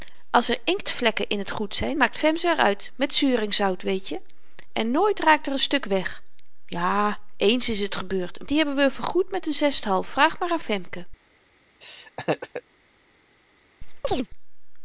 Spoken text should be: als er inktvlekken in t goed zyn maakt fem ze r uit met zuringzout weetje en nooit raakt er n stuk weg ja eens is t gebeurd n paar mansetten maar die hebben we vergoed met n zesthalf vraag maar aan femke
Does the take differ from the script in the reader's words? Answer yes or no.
yes